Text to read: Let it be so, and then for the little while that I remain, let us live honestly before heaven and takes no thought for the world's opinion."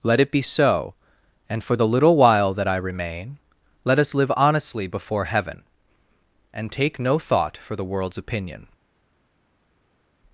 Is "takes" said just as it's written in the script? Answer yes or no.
no